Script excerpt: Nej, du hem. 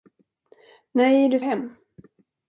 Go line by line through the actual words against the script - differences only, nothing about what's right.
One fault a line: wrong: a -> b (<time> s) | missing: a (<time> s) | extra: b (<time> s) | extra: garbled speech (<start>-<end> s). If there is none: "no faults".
no faults